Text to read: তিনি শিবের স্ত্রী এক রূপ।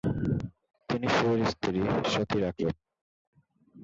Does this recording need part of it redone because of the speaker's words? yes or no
yes